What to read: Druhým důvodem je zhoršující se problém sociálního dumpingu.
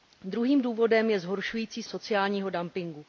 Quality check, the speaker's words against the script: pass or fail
fail